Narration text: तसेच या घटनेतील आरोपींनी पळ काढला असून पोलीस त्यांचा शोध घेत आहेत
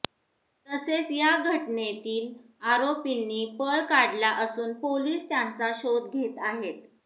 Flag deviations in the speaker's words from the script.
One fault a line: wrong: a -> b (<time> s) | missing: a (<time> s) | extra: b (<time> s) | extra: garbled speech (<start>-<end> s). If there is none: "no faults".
no faults